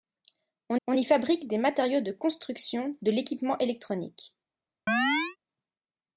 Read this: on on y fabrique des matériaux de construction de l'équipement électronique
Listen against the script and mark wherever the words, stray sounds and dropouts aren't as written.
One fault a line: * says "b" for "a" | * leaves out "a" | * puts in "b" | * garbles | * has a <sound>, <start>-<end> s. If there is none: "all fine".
* has a chirp, 4.9-5.4 s